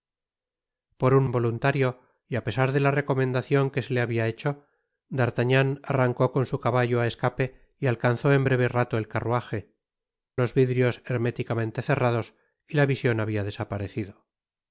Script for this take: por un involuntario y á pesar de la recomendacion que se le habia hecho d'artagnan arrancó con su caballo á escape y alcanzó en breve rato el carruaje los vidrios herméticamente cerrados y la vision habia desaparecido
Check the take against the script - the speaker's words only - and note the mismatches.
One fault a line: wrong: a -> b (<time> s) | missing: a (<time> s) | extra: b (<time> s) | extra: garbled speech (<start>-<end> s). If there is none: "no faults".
no faults